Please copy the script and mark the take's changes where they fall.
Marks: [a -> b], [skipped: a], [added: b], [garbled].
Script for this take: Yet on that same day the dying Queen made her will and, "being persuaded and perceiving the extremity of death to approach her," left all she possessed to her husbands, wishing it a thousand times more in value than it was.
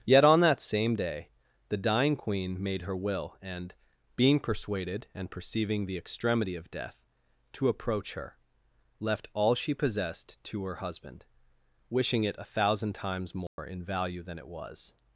Yet on that same day the dying Queen made her will and, "being persuaded and perceiving the extremity of death to approach her," left all she possessed to her [husbands, -> husband] wishing it a thousand times more in value than it was.